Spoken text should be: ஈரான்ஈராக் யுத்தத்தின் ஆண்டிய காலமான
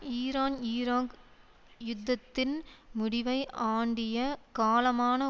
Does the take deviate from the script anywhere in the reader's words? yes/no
yes